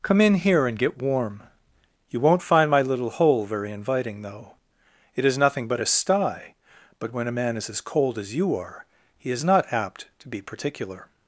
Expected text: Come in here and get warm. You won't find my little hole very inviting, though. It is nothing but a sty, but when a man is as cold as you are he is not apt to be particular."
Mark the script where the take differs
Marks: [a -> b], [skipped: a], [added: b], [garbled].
Come in here and get warm. You won't find my little hole very inviting, though. It is nothing but a sty, but when a man is as cold as you are he is not apt to be particular."